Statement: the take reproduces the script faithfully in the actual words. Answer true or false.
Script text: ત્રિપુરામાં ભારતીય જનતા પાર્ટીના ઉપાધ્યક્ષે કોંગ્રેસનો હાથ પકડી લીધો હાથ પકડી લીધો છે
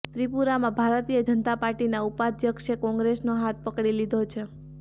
false